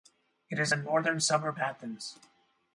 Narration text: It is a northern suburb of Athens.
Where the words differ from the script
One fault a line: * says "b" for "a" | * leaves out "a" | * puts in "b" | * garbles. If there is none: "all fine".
* leaves out "of"